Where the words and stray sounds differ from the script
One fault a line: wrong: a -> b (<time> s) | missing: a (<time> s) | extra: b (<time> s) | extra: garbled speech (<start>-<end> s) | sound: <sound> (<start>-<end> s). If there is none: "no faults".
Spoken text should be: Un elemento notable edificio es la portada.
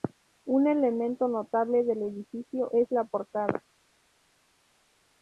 extra: del (1.8 s)